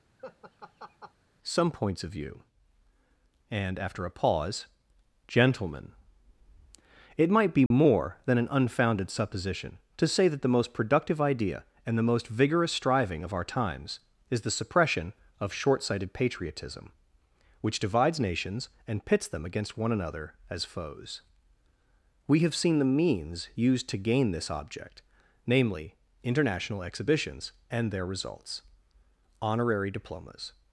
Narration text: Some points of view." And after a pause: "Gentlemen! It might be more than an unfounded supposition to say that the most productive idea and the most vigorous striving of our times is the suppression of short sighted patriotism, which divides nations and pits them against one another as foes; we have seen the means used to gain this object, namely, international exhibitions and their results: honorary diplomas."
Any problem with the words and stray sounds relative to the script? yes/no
yes